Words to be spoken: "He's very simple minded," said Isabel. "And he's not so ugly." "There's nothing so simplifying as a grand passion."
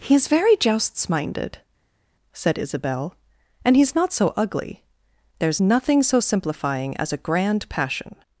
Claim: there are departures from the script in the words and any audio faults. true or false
true